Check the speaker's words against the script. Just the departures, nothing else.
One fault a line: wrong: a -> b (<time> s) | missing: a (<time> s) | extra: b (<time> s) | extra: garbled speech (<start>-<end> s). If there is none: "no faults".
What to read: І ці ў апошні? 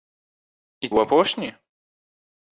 missing: ці (0.9 s)